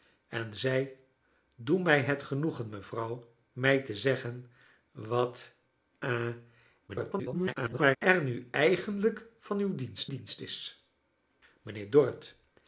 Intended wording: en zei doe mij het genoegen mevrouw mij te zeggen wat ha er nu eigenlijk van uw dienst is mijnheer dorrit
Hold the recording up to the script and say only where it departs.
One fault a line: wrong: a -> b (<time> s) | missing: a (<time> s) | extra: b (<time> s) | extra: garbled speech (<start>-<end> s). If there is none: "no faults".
extra: garbled speech (6.9-8.0 s)
extra: dienst (10.1 s)